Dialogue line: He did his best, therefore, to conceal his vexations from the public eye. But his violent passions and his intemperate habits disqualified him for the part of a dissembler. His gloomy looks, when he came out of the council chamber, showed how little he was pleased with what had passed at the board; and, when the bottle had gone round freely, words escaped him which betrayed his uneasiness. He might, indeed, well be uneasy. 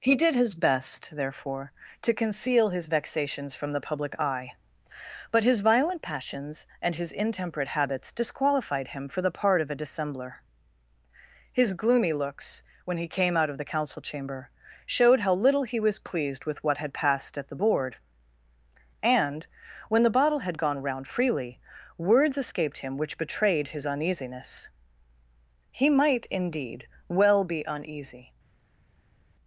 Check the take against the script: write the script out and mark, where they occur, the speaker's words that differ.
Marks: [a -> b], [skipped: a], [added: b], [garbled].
He did his best, therefore, to conceal his vexations from the public eye. But his violent passions and his intemperate habits disqualified him for the part of a dissembler. His gloomy looks, when he came out of the council chamber, showed how little he was pleased with what had passed at the board; and, when the bottle had gone round freely, words escaped him which betrayed his uneasiness. He might, indeed, well be uneasy.